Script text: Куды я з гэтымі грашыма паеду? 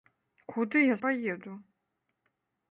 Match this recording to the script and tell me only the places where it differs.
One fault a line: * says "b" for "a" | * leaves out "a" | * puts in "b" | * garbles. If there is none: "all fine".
* leaves out "з гэтымі грашыма"